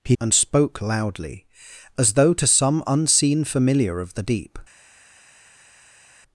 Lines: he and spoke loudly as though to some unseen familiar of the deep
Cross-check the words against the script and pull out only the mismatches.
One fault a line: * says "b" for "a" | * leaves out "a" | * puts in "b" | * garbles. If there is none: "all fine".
all fine